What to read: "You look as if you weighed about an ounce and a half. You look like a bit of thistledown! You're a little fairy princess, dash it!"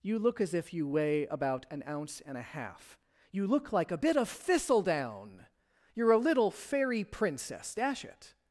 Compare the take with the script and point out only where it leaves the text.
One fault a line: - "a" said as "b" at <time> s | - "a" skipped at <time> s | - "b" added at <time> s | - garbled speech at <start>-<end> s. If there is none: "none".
- "weighed" said as "weigh" at 0.9 s